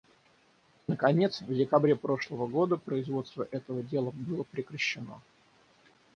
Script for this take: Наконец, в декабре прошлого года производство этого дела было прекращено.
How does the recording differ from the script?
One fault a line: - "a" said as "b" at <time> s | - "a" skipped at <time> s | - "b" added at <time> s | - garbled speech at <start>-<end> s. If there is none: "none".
none